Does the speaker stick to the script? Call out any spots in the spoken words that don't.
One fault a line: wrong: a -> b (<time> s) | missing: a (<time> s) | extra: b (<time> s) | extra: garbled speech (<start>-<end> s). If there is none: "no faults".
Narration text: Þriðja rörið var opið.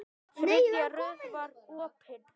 no faults